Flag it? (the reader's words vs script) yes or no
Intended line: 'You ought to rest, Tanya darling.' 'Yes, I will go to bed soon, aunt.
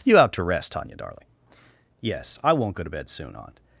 yes